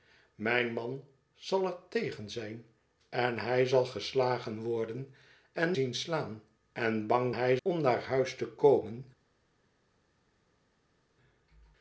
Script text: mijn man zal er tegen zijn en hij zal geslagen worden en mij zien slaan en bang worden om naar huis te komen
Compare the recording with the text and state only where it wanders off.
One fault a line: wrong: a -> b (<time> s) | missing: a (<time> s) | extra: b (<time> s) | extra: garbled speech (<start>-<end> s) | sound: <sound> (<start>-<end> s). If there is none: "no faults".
missing: mij (5.8 s)
wrong: worden -> hij (7.3 s)